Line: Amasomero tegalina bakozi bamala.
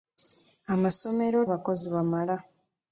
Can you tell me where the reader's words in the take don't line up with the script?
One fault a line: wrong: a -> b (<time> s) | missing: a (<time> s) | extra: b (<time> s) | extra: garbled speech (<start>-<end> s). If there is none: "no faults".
missing: tegalina (1.4 s)